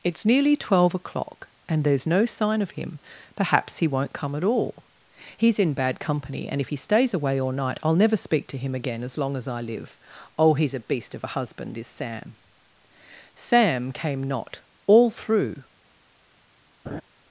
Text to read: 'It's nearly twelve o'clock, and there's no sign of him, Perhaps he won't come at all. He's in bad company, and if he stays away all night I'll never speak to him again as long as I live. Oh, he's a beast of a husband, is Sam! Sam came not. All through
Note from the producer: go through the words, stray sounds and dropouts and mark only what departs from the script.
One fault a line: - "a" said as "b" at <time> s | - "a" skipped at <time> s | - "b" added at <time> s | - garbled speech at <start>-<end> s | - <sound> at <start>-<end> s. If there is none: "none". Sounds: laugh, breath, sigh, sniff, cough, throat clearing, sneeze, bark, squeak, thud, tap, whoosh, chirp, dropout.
- laugh at 16.9-17.0 s